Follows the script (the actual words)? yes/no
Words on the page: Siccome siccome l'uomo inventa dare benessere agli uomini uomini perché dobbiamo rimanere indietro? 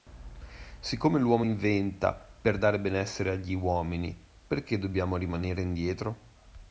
no